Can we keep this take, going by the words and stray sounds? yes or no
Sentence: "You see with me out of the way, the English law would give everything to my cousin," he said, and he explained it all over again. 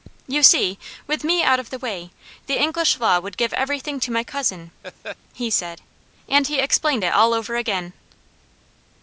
no